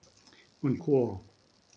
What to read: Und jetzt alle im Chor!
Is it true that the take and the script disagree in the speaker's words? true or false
true